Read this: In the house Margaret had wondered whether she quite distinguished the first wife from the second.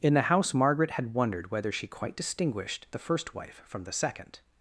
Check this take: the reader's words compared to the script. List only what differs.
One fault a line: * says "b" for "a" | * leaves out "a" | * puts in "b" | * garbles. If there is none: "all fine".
all fine